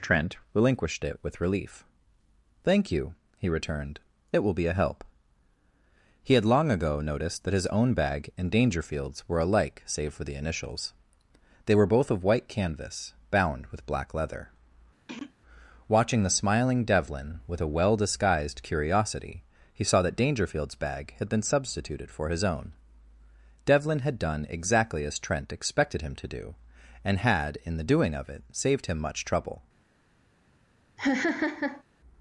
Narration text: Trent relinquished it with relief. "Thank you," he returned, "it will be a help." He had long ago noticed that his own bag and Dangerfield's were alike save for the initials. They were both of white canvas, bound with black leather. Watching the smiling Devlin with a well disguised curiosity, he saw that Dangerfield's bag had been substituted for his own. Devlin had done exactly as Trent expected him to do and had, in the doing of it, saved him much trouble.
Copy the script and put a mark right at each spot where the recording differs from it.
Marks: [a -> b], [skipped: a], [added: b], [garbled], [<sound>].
Trent relinquished it with relief. "Thank you," he returned, "it will be a help." He had long ago noticed that his own bag and Dangerfield's were alike save for the initials. They were both of white canvas, bound with black leather. [throat clearing] Watching the smiling Devlin with a well disguised curiosity, he saw that Dangerfield's bag had been substituted for his own. Devlin had done exactly as Trent expected him to do and had, in the doing of it, saved him much trouble. [laugh]